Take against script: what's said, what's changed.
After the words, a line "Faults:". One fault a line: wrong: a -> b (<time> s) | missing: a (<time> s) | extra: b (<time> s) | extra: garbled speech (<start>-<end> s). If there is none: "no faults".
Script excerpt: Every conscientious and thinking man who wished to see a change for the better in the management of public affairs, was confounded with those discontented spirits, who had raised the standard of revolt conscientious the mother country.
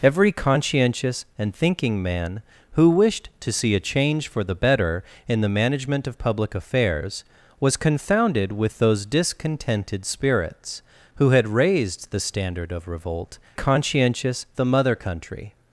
Every conscientious and thinking man who wished to see a change for the better in the management of public affairs, was confounded with those discontented spirits, who had raised the standard of revolt conscientious the mother country.
Faults:
no faults